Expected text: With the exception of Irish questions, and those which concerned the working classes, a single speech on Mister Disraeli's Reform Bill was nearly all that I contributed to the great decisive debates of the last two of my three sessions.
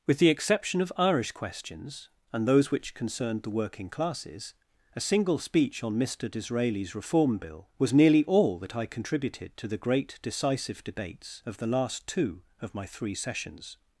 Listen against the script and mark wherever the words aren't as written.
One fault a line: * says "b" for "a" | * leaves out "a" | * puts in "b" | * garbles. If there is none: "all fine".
all fine